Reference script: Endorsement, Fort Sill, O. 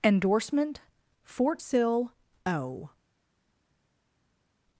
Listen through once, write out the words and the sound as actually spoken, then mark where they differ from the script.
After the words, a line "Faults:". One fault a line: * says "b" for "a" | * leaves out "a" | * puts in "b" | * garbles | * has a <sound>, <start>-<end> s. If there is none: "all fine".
Endorsement, Fort Sill, O.
Faults:
all fine